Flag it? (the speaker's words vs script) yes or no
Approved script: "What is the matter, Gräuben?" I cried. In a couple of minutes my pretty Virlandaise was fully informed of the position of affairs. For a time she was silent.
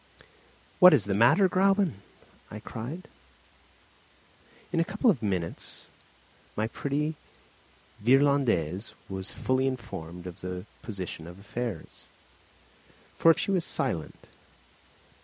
yes